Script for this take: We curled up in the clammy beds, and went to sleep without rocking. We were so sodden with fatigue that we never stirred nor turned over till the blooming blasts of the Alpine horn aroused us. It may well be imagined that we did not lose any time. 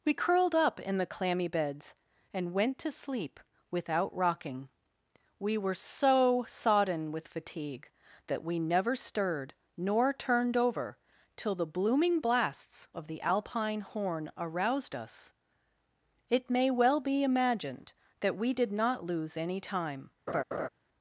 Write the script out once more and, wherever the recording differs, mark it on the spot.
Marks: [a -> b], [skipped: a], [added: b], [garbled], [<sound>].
We curled up in the clammy beds, and went to sleep without rocking. We were so sodden with fatigue that we never stirred nor turned over till the blooming blasts of the Alpine horn aroused us. It may well be imagined that we did not lose any time. [laugh]